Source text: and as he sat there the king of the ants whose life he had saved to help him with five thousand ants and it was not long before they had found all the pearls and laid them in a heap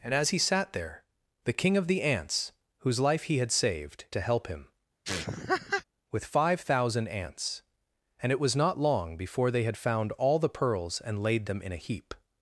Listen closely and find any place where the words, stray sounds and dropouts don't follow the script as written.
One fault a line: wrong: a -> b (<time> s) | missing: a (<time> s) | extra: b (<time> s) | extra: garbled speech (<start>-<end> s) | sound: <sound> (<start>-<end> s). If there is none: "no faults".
sound: laugh (5.0-5.8 s)